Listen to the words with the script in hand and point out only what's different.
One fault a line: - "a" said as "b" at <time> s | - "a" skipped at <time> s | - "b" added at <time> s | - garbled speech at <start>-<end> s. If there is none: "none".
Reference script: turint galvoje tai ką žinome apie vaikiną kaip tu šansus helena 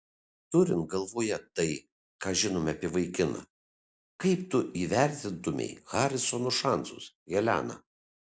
- "įvertintumei harisono" added at 4.8 s